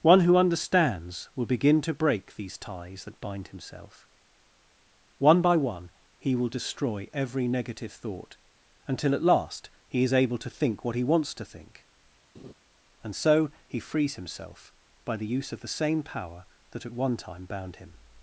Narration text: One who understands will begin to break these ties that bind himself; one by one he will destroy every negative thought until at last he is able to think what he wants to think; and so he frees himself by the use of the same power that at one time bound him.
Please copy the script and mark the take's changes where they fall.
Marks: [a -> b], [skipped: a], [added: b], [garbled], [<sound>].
One who understands will begin to break these ties that bind himself; one by one he will destroy every negative thought until at last he is able to think what he wants to think; [laugh] and so he frees himself by the use of the same power that at one time bound him.